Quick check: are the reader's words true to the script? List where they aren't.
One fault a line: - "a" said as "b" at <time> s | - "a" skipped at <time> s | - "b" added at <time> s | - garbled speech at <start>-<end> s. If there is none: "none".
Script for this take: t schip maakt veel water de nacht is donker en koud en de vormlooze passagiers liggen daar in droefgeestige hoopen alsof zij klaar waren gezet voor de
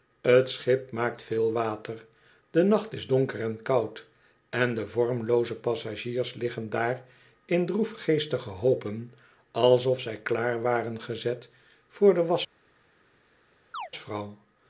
none